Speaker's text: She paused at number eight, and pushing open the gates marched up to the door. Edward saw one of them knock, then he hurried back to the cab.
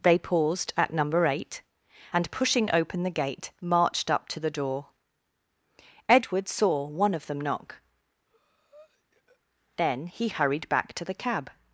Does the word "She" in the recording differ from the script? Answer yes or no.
yes